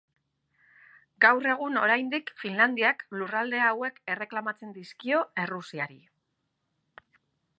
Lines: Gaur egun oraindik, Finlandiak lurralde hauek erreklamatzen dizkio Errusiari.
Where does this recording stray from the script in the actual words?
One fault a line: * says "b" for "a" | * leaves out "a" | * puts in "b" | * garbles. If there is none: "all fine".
all fine